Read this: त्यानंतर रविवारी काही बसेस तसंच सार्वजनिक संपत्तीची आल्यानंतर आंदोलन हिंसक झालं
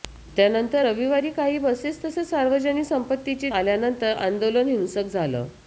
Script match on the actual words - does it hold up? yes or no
yes